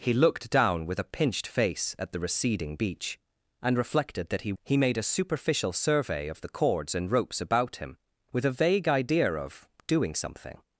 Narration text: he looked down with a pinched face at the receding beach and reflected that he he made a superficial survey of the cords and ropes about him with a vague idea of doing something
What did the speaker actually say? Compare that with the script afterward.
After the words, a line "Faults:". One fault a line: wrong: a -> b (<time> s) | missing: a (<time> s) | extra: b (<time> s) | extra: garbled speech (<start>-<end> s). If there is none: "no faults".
he looked down with a pinched face at the receding beach and reflected that he he made a superficial survey of the cords and ropes about him with a vague idea of doing something
Faults:
no faults